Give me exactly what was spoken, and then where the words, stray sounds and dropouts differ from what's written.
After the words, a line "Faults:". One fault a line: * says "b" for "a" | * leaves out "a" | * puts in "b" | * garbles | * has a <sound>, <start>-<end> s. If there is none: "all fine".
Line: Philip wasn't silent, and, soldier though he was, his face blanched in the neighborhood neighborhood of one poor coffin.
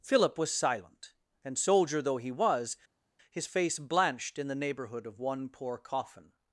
Philip was silent, and, soldier though he was, his face blanched in the neighborhood of one poor coffin.
Faults:
* says "was" for "wasn't"
* leaves out "neighborhood"